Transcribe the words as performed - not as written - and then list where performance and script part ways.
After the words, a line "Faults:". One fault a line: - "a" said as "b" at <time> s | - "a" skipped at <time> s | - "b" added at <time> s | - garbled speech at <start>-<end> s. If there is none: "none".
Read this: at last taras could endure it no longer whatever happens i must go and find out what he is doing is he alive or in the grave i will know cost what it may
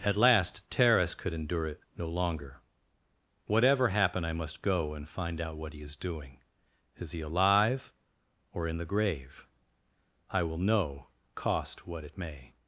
at last taras could endure it no longer whatever happen i must go and find out what he is doing is he alive or in the grave i will know cost what it may
Faults:
- "happens" said as "happen" at 3.9 s